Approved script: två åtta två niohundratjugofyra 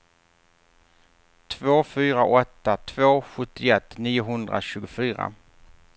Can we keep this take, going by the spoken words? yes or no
no